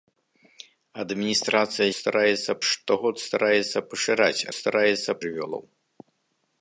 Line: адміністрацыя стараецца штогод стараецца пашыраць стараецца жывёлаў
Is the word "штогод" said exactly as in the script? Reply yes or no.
yes